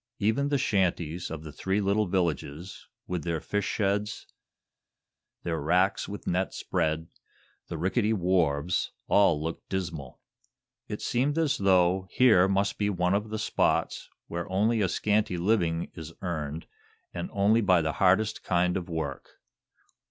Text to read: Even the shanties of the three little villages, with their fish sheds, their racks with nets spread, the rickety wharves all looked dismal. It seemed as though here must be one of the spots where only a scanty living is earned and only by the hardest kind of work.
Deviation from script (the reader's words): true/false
false